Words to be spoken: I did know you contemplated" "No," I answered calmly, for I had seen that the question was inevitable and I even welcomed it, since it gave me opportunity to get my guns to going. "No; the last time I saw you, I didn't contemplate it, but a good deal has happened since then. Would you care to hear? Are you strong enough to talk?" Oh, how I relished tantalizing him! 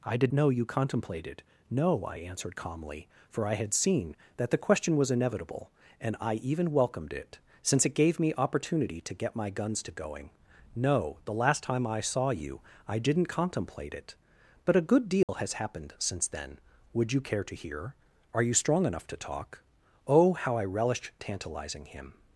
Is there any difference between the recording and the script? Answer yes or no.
no